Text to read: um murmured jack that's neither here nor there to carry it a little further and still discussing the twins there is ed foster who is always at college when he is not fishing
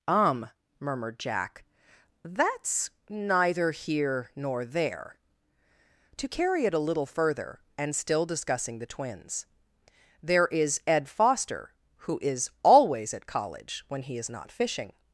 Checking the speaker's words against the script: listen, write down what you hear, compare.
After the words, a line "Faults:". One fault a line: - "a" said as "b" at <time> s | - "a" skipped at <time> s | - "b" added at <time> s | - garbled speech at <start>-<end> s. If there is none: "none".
um murmured jack that's neither here nor there to carry it a little further and still discussing the twins there is ed foster who is always at college when he is not fishing
Faults:
none